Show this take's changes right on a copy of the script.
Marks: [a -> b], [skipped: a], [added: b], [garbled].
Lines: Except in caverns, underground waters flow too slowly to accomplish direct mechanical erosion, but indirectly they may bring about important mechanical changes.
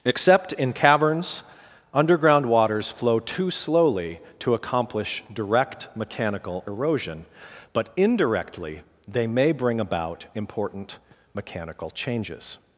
Except in caverns, underground waters flow too slowly to accomplish direct mechanical erosion, but indirectly they may bring about important mechanical changes.